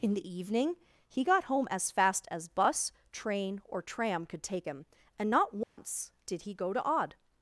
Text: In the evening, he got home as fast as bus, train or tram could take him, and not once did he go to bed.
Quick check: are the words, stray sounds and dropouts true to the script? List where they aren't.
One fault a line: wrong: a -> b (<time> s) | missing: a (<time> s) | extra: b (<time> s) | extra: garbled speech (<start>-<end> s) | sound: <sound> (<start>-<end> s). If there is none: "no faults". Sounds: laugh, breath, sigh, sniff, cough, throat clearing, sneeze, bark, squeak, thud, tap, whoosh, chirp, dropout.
sound: dropout (5.6-5.8 s)
wrong: bed -> odd (6.8 s)